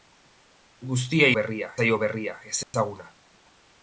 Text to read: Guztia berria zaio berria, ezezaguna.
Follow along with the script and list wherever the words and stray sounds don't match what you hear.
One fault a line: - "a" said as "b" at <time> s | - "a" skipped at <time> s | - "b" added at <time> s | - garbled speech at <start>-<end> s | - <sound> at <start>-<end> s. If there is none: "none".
- dropout at 2.6-2.7 s